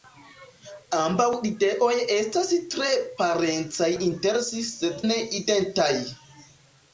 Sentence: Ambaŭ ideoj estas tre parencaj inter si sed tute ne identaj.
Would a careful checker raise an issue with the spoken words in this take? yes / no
yes